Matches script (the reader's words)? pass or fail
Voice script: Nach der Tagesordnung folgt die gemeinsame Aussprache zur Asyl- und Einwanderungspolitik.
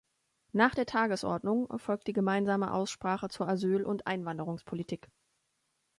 pass